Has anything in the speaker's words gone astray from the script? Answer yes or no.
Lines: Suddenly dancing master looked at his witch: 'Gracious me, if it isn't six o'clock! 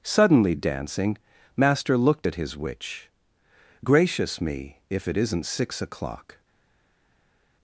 no